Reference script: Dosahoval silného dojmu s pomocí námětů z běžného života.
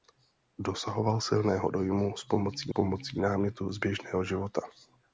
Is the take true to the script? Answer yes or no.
no